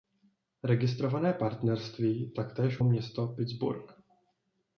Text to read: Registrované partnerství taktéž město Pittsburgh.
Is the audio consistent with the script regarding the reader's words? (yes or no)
yes